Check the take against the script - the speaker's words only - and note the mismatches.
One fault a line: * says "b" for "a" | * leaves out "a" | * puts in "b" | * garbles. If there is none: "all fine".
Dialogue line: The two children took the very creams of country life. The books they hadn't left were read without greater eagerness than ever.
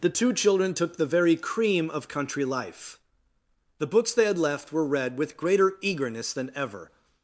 * says "cream" for "creams"
* says "had" for "hadn't"
* says "with" for "without"